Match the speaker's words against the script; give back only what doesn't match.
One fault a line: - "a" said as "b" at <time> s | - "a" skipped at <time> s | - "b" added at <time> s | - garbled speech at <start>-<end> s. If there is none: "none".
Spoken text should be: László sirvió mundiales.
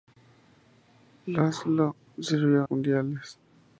none